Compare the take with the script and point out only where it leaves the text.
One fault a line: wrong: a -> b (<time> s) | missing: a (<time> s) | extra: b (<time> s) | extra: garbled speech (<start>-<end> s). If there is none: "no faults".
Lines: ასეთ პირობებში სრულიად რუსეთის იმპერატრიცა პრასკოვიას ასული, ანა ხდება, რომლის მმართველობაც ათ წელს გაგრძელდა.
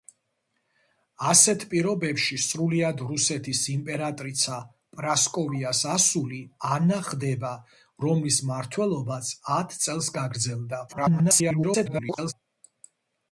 extra: garbled speech (10.9-12.3 s)